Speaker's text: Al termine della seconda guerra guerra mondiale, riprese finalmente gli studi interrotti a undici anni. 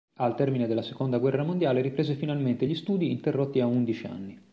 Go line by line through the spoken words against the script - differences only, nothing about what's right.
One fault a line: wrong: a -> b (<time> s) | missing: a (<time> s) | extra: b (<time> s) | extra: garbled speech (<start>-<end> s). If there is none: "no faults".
missing: guerra (1.4 s)